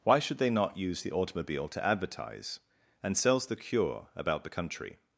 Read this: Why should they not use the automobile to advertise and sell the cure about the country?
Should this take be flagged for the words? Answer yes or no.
yes